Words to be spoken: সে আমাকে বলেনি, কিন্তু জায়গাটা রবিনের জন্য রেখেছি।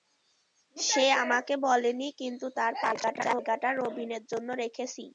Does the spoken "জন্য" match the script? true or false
true